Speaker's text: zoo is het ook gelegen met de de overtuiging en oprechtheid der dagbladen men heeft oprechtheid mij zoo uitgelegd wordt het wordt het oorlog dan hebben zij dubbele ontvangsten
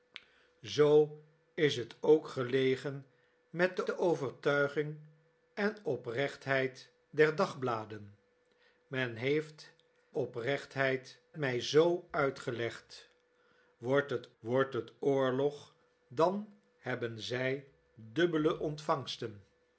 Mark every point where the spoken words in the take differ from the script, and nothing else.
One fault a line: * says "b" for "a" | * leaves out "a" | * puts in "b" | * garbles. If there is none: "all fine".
all fine